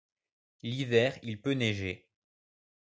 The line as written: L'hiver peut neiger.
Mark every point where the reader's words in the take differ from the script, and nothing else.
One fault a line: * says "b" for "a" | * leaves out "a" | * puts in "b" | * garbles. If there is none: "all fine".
* puts in "il"